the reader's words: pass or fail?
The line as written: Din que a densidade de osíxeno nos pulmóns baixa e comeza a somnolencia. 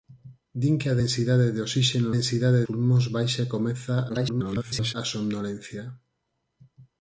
fail